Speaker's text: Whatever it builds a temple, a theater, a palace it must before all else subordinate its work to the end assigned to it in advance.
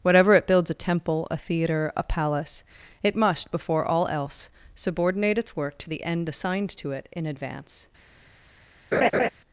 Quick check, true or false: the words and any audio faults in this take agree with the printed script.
false